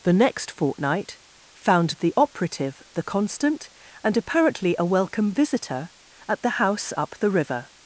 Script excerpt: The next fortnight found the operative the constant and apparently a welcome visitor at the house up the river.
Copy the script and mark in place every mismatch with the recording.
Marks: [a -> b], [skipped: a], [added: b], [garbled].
The next fortnight found the operative the constant and apparently a welcome visitor at the house up the river.